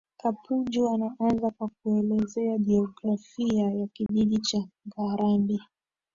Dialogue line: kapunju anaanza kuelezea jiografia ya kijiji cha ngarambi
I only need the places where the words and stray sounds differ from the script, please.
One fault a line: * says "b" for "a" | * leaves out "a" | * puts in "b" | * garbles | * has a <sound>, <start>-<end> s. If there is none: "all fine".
* puts in "kwa"
* has a dropout, 4.1-4.1 s